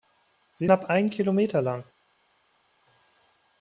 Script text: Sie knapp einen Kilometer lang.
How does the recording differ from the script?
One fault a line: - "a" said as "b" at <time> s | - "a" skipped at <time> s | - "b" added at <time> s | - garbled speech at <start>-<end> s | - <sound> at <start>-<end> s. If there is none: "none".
none